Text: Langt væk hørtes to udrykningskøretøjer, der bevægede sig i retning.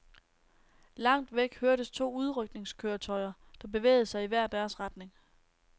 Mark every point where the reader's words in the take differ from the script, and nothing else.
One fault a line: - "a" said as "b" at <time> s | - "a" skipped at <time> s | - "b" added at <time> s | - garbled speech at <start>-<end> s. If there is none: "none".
- "hver deres" added at 4.3 s